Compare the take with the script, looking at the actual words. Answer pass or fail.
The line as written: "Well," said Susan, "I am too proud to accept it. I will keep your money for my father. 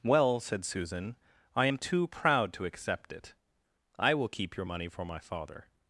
pass